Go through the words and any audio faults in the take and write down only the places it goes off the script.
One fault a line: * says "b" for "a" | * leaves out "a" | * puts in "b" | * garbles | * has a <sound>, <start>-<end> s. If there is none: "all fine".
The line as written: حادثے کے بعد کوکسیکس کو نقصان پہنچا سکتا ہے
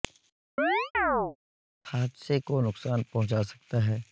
* has a chirp, 0.6-1.4 s
* leaves out "کے بعد کوکسیکس"